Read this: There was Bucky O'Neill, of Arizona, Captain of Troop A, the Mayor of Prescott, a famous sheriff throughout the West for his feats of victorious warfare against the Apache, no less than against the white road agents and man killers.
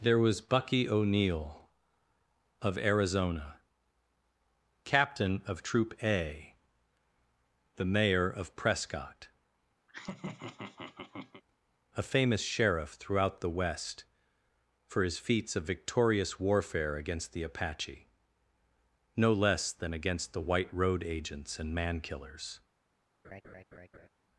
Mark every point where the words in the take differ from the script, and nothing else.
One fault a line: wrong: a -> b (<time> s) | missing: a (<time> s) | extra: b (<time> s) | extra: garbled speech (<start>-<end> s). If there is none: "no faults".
no faults